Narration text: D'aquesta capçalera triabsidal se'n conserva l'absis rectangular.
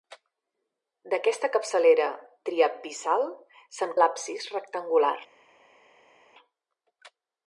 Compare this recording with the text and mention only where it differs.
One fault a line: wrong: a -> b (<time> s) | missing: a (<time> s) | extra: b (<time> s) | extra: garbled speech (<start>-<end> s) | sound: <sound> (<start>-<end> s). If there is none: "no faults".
missing: conserva (3.9 s)